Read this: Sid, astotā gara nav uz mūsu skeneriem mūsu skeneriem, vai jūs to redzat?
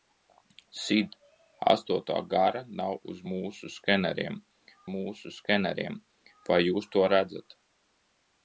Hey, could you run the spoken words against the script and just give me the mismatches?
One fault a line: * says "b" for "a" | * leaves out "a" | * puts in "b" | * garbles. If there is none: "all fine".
all fine